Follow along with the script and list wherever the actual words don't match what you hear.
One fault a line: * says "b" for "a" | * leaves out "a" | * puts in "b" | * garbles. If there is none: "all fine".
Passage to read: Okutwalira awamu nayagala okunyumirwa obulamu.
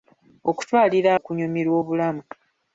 * leaves out "awamu nayagala"